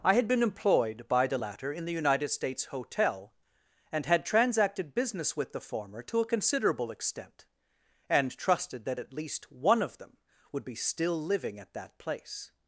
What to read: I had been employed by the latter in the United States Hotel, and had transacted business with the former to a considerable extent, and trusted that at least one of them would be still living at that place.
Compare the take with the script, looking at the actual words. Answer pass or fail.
pass